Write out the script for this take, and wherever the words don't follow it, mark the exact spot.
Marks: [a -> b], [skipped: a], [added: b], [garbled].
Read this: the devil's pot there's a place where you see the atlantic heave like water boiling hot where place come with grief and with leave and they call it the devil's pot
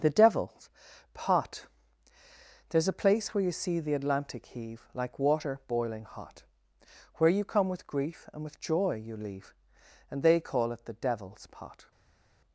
the devil's pot there's a place where you see the atlantic heave like water boiling hot where [place -> you] come with grief and with [added: joy you] leave and they call it the devil's pot